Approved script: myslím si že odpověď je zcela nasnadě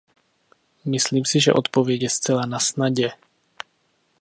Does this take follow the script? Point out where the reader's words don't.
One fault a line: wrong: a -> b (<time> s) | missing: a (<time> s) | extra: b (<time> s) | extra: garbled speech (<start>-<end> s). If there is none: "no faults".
no faults